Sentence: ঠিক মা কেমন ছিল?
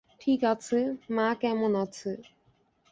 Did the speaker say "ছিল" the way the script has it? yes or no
no